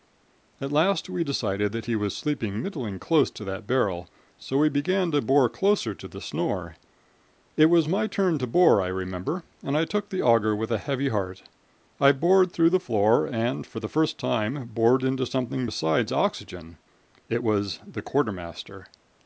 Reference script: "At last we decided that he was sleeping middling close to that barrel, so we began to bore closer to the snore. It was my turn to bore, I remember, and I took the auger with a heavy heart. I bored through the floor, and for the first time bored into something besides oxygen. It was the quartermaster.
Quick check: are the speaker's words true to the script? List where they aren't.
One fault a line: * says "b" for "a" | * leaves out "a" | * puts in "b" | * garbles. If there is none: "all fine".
all fine